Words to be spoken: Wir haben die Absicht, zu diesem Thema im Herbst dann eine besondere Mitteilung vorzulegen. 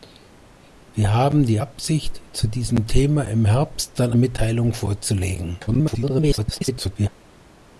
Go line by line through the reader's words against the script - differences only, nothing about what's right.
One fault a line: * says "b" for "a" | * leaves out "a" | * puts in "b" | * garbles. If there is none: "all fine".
* leaves out "eine besondere"
* garbles